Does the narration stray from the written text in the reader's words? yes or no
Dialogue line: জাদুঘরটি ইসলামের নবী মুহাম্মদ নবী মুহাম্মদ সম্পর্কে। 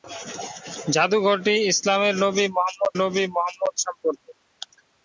no